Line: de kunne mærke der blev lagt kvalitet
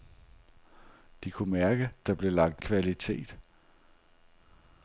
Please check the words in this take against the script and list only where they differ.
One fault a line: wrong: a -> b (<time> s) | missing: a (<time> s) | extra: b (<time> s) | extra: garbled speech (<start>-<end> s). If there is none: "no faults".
no faults